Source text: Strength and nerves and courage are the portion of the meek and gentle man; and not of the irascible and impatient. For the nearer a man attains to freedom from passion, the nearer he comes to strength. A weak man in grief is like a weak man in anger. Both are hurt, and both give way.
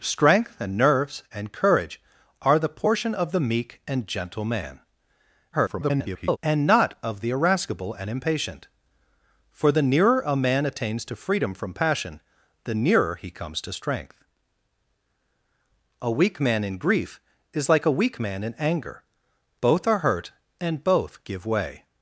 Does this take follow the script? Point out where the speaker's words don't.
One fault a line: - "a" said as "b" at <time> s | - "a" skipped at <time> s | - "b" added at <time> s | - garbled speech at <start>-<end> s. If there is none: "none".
- garbled speech at 5.5-6.4 s